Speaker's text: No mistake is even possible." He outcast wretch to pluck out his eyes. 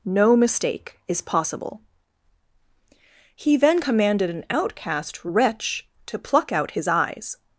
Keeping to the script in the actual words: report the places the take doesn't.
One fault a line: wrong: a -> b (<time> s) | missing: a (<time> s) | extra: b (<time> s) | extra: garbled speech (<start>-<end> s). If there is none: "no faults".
missing: even (1.2 s)
extra: then commanded an (3.6 s)